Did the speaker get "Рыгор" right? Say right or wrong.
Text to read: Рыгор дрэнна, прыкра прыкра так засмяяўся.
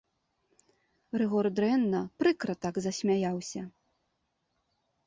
right